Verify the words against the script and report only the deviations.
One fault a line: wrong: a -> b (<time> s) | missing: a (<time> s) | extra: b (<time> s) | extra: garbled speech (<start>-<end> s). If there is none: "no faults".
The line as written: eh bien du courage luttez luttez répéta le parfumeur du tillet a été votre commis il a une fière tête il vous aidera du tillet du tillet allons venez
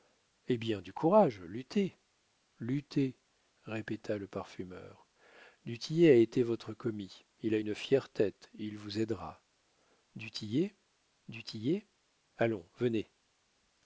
no faults